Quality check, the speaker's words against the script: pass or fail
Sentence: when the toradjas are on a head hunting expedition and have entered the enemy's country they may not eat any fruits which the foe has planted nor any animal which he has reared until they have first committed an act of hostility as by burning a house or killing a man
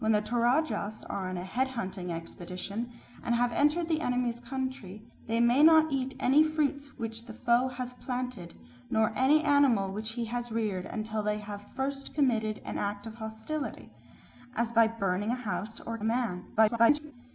fail